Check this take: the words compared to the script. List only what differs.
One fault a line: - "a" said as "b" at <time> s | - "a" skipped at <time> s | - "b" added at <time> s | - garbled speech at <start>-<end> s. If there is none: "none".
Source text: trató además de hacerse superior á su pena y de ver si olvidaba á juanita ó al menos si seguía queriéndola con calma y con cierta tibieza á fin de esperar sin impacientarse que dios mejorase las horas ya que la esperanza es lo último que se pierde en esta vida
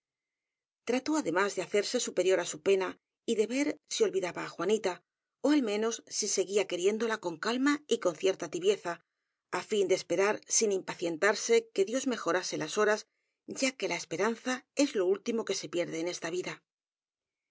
none